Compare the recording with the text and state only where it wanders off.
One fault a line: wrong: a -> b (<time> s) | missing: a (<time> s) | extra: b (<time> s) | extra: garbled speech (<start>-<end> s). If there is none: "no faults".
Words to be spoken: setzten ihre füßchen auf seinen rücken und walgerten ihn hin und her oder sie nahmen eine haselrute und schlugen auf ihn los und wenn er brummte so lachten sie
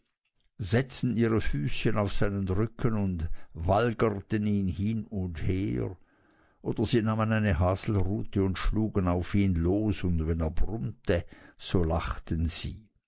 no faults